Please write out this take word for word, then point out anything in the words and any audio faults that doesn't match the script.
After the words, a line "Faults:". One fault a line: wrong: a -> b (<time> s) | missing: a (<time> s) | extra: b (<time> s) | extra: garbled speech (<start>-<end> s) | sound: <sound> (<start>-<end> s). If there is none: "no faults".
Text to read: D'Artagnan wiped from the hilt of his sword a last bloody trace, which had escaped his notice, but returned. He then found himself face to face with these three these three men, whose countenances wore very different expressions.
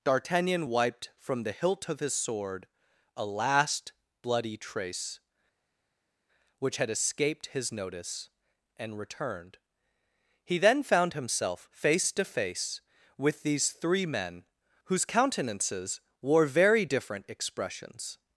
D'Artagnan wiped from the hilt of his sword a last bloody trace, which had escaped his notice, and returned. He then found himself face to face with these three men, whose countenances wore very different expressions.
Faults:
wrong: but -> and (8.8 s)
missing: these three (14.1 s)